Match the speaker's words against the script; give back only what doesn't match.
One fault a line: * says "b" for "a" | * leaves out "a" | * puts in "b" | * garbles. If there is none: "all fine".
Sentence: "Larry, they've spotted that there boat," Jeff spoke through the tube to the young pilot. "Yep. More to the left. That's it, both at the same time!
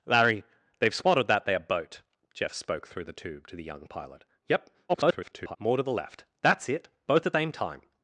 * garbles
* leaves out "the"